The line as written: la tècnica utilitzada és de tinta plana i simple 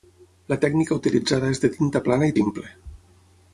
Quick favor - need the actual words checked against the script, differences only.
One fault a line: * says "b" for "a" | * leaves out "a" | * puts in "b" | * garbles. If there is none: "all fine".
all fine